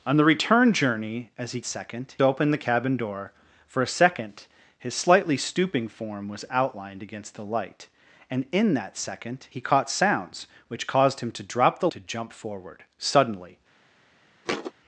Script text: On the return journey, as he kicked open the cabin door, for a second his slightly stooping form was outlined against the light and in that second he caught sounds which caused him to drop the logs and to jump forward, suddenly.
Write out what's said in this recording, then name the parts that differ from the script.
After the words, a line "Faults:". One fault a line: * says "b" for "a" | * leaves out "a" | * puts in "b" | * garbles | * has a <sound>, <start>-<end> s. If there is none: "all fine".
On the return journey, as he second open the cabin door, for a second his slightly stooping form was outlined against the light and in that second he caught sounds which caused him to drop the to jump forward, suddenly.
Faults:
* says "second" for "kicked"
* leaves out "logs and"
* has a thud, 14.4-14.7 s